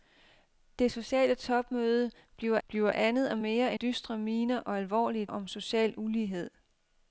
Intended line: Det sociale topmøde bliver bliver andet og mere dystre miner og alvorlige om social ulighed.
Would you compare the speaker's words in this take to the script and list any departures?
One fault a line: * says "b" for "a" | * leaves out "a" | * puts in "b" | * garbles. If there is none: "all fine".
all fine